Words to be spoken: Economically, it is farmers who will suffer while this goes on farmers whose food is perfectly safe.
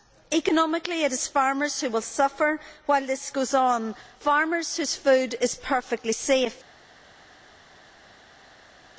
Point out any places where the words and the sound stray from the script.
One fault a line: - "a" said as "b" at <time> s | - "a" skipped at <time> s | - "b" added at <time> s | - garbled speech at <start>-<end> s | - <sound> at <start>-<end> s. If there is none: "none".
none